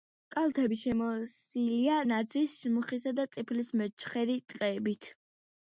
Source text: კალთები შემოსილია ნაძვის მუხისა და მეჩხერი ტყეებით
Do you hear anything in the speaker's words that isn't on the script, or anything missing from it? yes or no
yes